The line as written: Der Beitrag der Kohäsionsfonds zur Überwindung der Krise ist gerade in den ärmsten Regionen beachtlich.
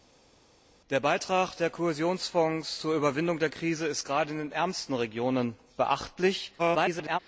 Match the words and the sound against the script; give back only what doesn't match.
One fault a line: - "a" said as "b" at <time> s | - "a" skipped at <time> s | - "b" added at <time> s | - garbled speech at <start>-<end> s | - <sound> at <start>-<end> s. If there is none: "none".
- garbled speech at 6.6-7.2 s